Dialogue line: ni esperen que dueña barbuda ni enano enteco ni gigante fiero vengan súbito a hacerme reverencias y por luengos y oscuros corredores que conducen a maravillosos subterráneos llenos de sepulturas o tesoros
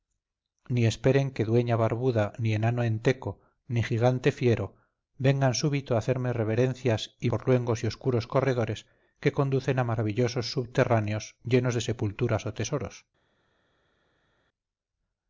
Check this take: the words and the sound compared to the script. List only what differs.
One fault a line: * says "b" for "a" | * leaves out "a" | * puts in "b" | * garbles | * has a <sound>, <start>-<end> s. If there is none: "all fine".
all fine